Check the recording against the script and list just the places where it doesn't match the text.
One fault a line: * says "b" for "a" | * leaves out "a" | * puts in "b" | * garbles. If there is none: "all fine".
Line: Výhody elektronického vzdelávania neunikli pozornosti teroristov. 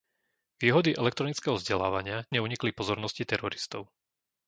all fine